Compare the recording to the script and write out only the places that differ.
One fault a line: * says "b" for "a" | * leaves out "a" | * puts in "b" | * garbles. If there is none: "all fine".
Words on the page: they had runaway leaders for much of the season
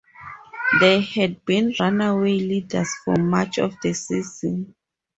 * puts in "been"